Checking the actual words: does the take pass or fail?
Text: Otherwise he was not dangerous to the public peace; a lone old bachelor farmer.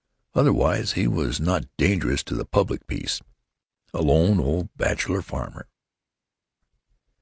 pass